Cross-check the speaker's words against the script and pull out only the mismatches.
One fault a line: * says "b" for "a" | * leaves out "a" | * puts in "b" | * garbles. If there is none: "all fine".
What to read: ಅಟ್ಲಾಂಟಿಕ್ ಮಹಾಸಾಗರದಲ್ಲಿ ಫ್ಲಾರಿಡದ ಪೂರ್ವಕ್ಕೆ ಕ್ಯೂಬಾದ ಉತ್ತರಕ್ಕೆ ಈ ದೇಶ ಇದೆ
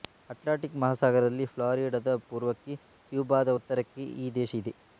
all fine